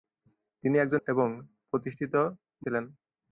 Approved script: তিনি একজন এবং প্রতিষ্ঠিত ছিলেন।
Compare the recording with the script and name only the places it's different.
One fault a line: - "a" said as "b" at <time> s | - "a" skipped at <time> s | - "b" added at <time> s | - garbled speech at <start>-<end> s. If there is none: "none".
none